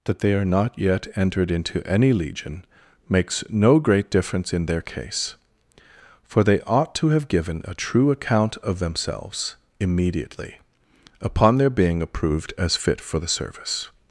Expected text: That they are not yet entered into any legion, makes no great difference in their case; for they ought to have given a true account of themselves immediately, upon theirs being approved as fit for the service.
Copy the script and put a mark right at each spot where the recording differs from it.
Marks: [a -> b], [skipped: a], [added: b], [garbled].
That they are not yet entered into any legion, makes no great difference in their case; for they ought to have given a true account of themselves immediately, upon [theirs -> their] being approved as fit for the service.